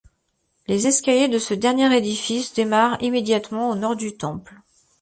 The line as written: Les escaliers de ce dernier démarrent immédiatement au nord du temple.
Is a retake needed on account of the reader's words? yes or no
yes